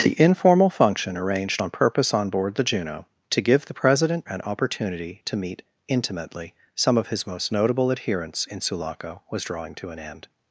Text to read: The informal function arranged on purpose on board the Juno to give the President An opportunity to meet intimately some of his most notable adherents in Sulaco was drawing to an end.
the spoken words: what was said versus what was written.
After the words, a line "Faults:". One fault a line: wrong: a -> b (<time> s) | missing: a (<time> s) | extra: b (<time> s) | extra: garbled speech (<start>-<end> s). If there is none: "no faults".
The informal function arranged on purpose on board the Juno to give the President An opportunity to meet intimately some of his most notable adherents in Sulaco was drawing to an end.
Faults:
no faults